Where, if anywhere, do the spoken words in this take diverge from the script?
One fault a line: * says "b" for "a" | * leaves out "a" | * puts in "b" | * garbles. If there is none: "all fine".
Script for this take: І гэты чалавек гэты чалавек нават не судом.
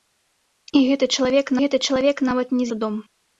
all fine